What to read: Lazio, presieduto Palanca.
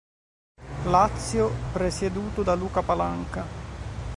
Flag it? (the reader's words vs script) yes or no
yes